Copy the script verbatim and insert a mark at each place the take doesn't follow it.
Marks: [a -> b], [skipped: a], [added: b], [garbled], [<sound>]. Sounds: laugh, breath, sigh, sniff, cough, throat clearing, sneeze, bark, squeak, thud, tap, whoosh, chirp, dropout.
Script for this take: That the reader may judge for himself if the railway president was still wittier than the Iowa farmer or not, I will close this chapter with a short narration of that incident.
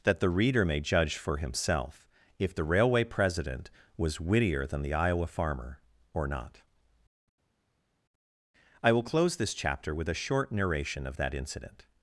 That the reader may judge for himself if the railway president was [skipped: still] wittier than the Iowa farmer or not, I will close this chapter with a short narration of that incident.